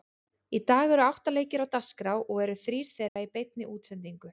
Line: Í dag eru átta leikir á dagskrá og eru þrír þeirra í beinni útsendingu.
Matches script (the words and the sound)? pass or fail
fail